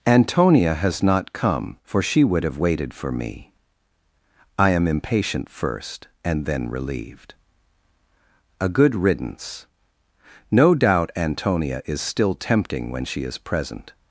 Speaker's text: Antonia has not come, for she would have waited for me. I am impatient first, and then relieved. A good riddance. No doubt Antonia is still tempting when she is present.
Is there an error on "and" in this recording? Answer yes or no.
no